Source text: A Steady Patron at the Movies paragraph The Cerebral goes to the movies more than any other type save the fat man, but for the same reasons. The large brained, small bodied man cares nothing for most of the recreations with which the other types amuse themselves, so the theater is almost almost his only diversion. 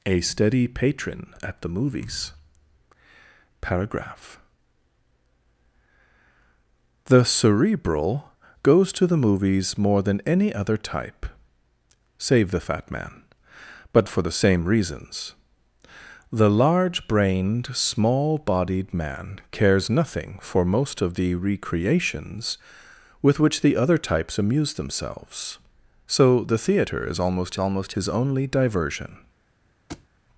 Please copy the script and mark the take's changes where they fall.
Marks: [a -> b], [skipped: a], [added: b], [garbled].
A Steady Patron at the Movies paragraph The Cerebral goes to the movies more than any other type save the fat man, but for the same reasons. The large brained, small bodied man cares nothing for most of the recreations with which the other types amuse themselves, so the theater is almost almost his only diversion.